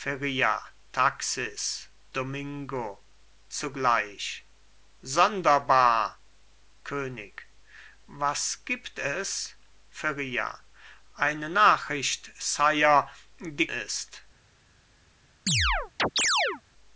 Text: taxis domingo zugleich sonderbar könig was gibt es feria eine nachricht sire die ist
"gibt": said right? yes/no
yes